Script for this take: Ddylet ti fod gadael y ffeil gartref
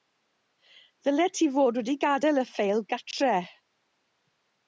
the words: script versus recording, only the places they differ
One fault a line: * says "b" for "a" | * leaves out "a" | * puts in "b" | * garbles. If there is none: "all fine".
* puts in "wedi"